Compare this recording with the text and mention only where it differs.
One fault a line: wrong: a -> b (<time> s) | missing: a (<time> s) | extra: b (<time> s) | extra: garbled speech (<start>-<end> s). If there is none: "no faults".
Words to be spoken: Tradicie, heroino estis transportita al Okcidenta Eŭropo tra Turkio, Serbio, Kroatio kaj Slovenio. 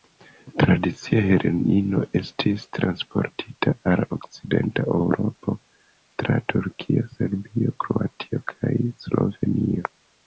no faults